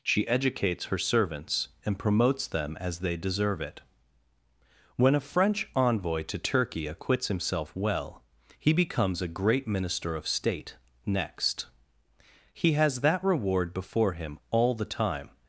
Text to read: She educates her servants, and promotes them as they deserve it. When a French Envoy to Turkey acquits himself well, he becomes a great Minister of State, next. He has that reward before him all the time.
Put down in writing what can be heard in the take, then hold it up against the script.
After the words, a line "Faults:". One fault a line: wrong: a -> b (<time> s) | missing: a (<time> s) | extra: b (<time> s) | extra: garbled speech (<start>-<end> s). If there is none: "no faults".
She educates her servants, and promotes them as they deserve it. When a French Envoy to Turkey acquits himself well, he becomes a great Minister of State, next. He has that reward before him all the time.
Faults:
no faults